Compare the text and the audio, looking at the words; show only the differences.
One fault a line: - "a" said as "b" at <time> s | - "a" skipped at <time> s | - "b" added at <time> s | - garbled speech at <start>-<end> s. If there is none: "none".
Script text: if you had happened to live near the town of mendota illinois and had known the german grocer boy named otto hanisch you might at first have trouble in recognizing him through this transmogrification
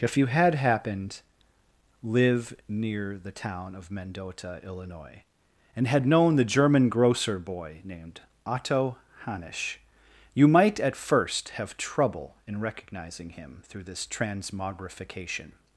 - "to" skipped at 1.2 s